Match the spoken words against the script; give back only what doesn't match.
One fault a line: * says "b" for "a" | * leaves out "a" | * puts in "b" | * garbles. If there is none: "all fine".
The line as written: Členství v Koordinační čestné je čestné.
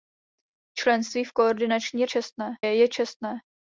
all fine